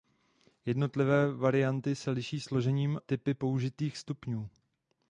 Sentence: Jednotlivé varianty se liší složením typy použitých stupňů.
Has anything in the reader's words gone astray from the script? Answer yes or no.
no